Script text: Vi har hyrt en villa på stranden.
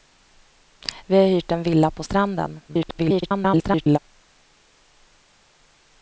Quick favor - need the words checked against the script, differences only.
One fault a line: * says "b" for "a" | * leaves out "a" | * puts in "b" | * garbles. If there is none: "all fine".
* garbles